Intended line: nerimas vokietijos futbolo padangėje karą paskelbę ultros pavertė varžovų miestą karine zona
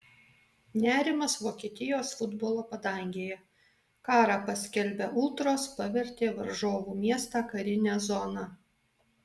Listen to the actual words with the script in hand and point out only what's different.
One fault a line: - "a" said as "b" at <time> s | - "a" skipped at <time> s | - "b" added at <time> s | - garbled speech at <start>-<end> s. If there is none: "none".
none